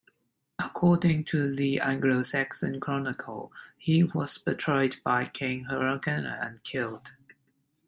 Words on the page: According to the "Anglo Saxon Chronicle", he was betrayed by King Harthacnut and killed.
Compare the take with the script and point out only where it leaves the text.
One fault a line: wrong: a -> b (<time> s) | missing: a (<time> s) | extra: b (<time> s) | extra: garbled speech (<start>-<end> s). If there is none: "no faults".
no faults